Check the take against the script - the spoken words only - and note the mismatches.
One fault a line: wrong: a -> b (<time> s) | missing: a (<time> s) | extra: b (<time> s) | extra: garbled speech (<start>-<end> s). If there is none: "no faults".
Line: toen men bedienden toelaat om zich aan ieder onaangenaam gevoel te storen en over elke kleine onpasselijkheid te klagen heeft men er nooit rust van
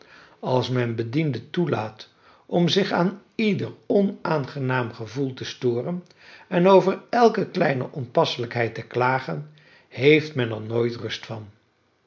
wrong: toen -> als (0.4 s)